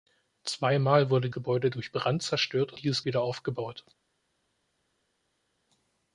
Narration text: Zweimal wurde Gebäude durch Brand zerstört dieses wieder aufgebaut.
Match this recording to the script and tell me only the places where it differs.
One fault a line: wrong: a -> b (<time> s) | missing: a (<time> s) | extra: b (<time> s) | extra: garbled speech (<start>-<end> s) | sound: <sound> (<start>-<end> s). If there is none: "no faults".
no faults